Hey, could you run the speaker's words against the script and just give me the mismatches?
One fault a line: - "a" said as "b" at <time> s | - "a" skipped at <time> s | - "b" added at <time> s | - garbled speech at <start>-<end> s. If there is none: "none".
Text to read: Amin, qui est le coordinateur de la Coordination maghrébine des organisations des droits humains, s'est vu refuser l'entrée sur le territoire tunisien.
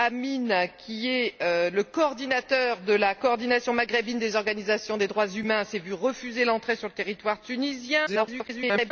- garbled speech at 8.1-8.9 s